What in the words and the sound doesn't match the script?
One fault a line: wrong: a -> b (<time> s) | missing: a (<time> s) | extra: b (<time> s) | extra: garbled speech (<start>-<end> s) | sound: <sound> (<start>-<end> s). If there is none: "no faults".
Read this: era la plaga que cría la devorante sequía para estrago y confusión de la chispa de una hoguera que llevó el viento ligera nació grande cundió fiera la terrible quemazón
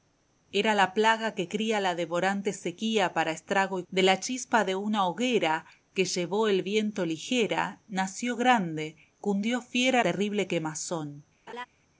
missing: confusión (3.8 s)
missing: la (10.0 s)
sound: laugh (11.5-11.7 s)